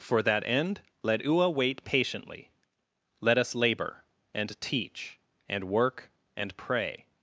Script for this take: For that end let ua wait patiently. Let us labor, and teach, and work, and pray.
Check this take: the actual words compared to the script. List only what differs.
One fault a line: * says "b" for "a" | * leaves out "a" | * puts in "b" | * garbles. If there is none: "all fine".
all fine